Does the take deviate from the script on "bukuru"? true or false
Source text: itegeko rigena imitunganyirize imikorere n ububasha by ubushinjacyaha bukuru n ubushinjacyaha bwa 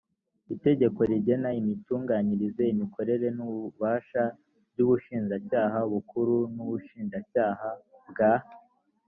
false